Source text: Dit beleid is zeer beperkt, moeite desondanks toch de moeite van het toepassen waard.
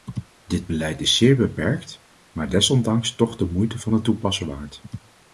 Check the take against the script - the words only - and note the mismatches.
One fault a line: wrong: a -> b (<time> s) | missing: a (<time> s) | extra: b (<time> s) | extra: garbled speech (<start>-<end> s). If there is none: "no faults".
wrong: moeite -> maar (2.3 s)